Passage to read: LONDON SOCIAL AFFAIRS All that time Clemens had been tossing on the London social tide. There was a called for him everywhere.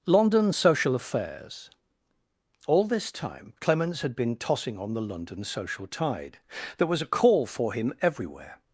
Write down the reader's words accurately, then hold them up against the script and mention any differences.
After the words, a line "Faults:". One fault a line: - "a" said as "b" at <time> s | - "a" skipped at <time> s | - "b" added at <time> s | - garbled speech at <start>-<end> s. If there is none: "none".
LONDON SOCIAL AFFAIRS All this time Clemens had been tossing on the London social tide. There was a call for him everywhere.
Faults:
- "that" said as "this" at 2.9 s
- "called" said as "call" at 7.1 s